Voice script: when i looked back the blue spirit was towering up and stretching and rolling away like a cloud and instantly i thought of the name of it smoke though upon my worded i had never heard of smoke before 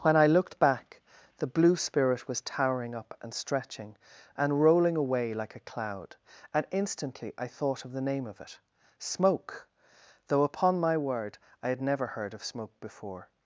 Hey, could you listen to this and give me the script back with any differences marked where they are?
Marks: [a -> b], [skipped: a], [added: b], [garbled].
when i looked back the blue spirit was towering up and stretching and rolling away like a cloud and instantly i thought of the name of it smoke though upon my [worded -> word] i had never heard of smoke before